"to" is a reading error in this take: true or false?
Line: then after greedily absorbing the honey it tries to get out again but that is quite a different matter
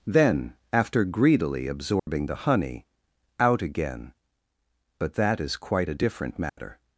true